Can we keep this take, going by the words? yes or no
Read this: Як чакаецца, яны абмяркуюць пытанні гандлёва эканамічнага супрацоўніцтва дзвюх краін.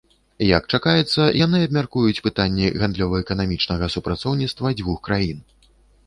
yes